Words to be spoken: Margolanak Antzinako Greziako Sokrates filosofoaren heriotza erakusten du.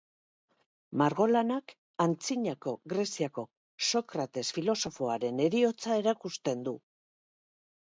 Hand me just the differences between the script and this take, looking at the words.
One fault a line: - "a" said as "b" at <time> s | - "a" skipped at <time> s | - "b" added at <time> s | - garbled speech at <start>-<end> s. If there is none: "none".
none